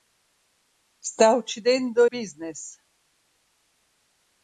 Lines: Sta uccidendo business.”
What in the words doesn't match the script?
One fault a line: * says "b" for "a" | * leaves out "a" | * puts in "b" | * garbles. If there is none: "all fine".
all fine